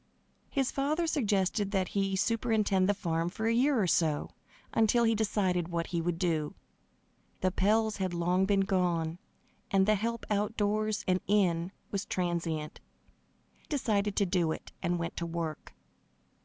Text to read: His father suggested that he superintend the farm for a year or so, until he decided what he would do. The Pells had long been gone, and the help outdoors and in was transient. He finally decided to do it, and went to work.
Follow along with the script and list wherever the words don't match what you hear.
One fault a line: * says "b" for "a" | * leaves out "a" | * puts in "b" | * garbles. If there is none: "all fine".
* leaves out "He finally"